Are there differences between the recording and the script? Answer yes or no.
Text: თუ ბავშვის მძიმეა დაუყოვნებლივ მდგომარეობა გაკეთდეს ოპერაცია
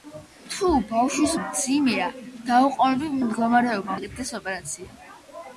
no